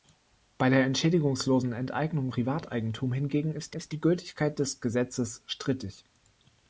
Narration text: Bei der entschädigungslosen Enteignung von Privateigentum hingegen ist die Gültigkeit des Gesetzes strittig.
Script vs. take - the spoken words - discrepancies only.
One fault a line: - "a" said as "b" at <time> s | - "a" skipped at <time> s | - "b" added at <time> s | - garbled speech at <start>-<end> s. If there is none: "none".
- "von" skipped at 2.3 s
- "ist" added at 3.7 s